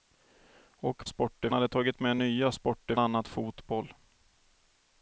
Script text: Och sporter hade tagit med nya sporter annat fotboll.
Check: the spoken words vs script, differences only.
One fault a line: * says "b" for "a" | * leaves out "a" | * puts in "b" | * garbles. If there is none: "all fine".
all fine